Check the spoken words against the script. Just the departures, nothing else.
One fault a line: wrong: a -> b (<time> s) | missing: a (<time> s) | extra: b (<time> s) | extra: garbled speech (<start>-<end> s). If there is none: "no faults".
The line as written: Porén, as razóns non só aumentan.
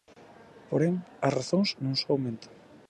no faults